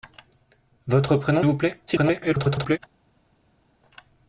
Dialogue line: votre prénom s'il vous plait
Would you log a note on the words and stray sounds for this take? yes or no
yes